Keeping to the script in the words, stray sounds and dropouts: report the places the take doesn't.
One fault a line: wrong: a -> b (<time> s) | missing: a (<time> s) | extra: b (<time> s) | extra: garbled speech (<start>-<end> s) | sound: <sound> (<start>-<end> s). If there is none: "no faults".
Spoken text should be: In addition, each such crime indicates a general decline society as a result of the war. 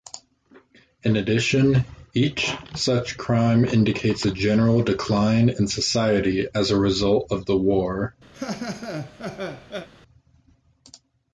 extra: in (5.5 s)
sound: laugh (8.3-9.9 s)